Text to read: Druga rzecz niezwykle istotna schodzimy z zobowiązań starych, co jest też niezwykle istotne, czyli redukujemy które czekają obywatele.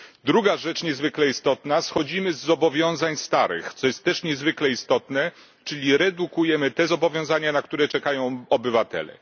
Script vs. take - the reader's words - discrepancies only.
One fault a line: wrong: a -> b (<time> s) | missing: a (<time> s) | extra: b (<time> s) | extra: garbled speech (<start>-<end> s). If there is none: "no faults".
extra: te zobowiązania na (6.7 s)